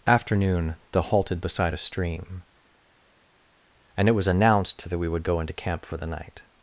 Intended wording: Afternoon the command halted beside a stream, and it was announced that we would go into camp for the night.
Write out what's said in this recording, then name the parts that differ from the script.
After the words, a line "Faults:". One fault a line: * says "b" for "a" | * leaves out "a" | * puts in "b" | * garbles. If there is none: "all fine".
Afternoon the halted beside a stream, and it was announced that we would go into camp for the night.
Faults:
* leaves out "command"